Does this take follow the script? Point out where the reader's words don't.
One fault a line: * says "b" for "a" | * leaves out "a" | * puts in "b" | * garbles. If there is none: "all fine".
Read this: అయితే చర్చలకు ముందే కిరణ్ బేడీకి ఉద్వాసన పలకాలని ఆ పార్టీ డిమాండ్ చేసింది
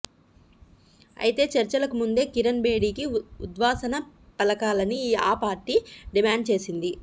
all fine